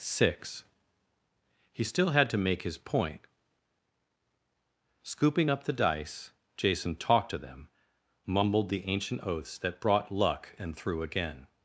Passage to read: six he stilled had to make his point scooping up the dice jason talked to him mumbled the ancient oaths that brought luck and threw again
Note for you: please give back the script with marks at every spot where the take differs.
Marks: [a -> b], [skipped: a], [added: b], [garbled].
six he [stilled -> still] had to make his point scooping up the dice jason talked to [him -> them] mumbled the ancient oaths that brought luck and threw again